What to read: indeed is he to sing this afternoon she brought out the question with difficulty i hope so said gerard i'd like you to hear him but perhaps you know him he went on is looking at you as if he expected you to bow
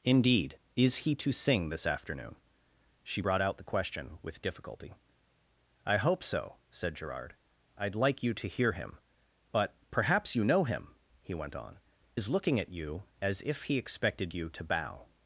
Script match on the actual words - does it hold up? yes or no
yes